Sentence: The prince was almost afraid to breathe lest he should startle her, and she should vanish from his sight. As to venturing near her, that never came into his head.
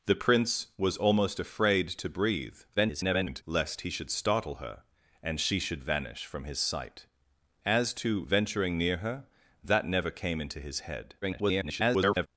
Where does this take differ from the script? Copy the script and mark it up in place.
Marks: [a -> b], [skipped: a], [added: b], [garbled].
The prince was almost afraid to breathe [garbled] lest he should startle her, and she should vanish from his sight. As to venturing near her, that never came into his head. [garbled]